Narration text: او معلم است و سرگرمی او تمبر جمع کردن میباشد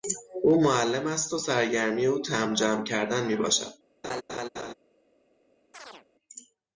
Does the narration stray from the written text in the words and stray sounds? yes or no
yes